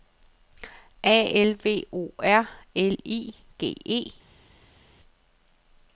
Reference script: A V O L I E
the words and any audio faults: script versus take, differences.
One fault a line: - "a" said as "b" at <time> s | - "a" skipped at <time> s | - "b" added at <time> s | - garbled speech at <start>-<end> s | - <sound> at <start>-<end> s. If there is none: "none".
- "L" added at 1.4 s
- "R" added at 2.2 s
- "G" added at 3.6 s